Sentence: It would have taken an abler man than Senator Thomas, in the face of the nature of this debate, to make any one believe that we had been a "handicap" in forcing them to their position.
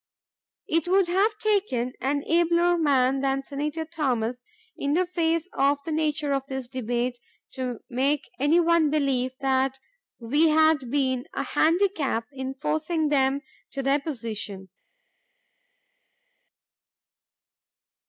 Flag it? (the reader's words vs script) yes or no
no